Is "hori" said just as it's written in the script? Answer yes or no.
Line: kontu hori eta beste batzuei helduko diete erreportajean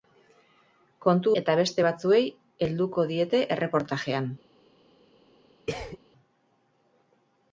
no